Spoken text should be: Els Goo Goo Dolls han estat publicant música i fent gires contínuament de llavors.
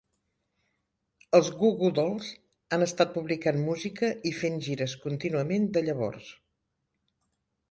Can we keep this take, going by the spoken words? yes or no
yes